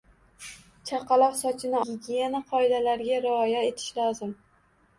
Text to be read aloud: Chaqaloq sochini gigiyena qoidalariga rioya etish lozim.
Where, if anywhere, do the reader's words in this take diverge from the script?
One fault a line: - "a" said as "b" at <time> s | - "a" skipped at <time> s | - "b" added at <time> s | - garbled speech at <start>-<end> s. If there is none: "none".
none